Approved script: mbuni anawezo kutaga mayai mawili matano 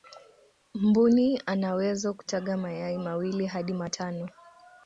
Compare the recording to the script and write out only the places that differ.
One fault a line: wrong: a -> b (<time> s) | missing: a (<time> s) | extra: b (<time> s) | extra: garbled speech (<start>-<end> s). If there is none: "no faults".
extra: hadi (3.5 s)